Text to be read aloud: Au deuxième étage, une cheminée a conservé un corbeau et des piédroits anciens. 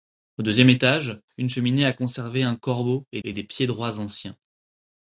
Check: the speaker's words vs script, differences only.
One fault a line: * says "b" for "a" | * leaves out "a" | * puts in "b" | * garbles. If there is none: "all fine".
* puts in "et"